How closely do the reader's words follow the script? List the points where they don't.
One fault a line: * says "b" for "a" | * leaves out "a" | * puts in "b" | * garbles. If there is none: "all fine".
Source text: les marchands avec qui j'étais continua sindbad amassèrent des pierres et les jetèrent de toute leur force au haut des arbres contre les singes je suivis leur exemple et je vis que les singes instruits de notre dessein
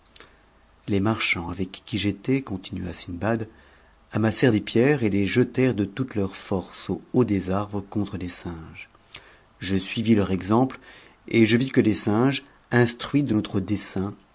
all fine